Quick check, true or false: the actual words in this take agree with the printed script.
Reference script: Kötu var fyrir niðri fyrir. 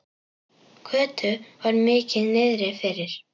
false